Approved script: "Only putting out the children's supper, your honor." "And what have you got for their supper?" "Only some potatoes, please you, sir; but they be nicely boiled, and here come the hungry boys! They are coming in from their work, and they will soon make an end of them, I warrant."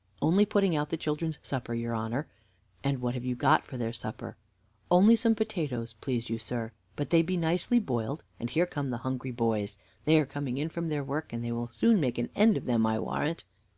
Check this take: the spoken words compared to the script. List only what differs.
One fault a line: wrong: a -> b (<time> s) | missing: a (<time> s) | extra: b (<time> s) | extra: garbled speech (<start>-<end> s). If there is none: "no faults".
no faults